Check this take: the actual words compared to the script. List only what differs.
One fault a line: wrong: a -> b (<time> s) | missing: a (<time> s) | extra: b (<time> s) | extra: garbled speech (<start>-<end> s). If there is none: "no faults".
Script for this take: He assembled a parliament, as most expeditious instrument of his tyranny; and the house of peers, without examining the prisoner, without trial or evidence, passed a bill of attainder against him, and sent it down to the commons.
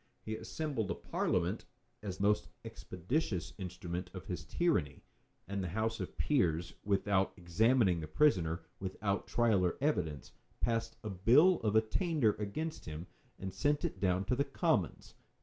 no faults